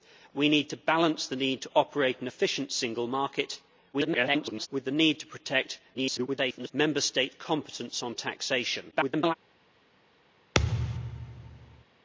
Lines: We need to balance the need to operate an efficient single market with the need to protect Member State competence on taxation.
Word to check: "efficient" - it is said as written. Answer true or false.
true